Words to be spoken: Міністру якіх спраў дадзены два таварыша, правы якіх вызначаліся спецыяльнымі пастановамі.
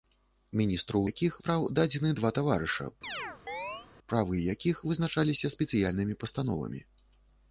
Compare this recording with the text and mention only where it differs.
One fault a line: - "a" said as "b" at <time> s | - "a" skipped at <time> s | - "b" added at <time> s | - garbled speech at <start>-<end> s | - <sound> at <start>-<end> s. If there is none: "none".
- chirp at 3.0-3.9 s